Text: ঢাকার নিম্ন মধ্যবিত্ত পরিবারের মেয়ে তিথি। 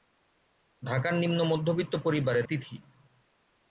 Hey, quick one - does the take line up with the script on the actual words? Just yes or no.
no